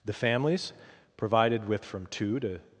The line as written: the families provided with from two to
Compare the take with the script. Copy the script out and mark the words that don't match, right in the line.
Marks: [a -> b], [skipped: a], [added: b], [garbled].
the families provided with from two to